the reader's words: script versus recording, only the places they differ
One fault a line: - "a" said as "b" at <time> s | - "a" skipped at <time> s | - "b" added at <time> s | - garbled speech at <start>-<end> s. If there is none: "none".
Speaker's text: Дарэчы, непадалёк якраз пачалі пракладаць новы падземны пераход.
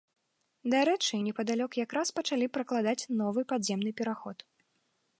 none